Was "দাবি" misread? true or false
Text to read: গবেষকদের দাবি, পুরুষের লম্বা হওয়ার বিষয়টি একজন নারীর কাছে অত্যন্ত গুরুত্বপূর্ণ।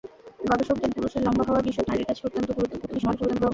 true